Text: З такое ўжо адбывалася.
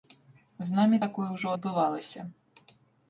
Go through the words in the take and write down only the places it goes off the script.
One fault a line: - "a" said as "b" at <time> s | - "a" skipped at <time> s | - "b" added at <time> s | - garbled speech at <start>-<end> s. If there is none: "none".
- "намі" added at 0.8 s